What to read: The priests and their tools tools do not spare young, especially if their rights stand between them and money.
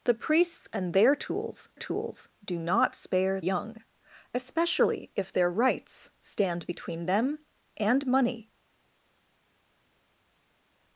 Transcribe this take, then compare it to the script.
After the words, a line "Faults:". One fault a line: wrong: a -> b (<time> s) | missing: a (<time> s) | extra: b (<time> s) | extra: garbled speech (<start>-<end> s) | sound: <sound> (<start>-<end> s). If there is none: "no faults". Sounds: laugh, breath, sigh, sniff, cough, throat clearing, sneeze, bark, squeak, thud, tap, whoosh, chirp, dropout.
The priests and their tools tools do not spare young, especially if their rights stand between them and money.
Faults:
no faults